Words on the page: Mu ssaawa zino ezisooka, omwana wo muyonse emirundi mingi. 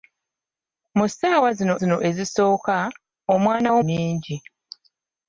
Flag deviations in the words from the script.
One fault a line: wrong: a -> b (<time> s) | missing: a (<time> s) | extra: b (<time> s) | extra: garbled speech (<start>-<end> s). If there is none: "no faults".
extra: zino (1.8 s)
missing: muyonse emirundi (3.8 s)